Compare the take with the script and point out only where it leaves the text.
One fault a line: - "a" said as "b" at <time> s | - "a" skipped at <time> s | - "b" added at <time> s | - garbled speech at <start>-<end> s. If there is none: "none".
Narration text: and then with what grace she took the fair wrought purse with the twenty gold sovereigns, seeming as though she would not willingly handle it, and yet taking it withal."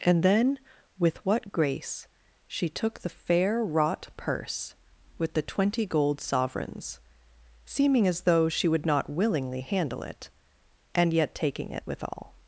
none